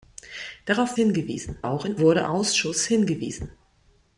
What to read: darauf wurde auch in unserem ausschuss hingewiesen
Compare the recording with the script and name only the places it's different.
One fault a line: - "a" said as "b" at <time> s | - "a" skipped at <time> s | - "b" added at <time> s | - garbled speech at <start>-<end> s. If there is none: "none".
- "wurde" said as "hingewiesen" at 0.9 s
- "unserem" said as "wurde" at 2.0 s